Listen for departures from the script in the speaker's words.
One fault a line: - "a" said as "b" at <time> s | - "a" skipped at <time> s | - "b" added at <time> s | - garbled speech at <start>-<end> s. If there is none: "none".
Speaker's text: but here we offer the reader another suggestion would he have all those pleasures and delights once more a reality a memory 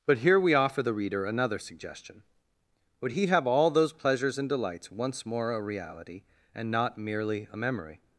- "and not merely" added at 6.5 s